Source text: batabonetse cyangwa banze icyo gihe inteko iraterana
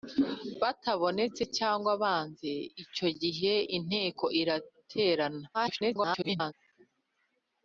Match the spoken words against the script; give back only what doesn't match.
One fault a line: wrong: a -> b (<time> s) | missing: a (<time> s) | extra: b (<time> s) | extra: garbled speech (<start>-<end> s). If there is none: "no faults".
extra: garbled speech (5.5-6.5 s)